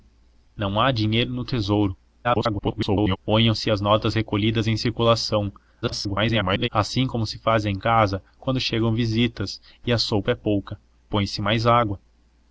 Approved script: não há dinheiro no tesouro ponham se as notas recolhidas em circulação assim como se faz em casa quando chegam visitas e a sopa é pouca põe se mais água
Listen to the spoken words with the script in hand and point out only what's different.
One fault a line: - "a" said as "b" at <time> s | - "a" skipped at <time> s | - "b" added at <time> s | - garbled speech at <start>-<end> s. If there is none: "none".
- garbled speech at 2.2-3.2 s
- garbled speech at 5.8-6.7 s